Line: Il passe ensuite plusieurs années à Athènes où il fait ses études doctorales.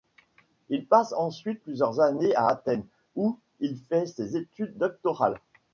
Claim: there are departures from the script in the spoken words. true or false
false